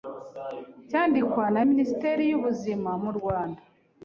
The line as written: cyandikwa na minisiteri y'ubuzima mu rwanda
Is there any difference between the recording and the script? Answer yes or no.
no